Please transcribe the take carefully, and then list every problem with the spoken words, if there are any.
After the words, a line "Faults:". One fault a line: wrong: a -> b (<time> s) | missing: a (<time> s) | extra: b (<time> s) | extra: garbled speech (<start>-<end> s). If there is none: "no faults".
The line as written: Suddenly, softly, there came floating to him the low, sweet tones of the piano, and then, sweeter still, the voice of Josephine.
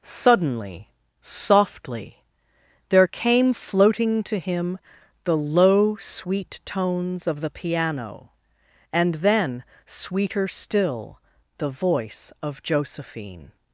Suddenly, softly, there came floating to him the low, sweet tones of the piano, and then, sweeter still, the voice of Josephine.
Faults:
no faults